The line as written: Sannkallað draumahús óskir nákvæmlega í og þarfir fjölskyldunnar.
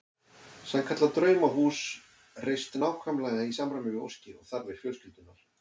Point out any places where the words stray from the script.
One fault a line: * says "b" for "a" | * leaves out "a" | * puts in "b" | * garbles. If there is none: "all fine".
* says "reist" for "óskir"
* puts in "samræmi við óskir"